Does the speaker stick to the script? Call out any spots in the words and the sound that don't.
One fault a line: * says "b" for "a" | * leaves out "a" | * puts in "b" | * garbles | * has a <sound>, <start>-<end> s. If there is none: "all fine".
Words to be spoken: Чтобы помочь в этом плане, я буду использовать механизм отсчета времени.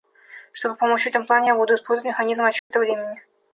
* has a dropout, 2.6-2.7 s